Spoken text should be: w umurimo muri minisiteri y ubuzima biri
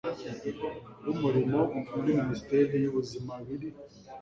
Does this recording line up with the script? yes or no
yes